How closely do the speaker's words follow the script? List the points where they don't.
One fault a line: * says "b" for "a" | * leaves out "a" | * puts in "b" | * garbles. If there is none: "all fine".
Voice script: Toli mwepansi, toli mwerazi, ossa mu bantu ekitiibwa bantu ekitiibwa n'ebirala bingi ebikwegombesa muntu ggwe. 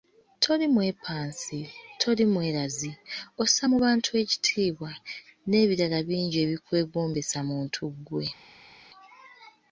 * leaves out "bantu ekitiibwa"